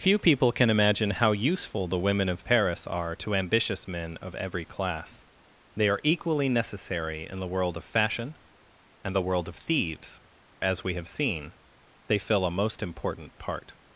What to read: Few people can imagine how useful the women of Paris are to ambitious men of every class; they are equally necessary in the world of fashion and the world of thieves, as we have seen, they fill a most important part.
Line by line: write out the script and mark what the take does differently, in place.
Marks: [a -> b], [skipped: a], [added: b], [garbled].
Few people can imagine how useful the women of Paris are to ambitious men of every class; they are equally necessary in the world of fashion and the world of thieves, as we have seen, they fill a most important part.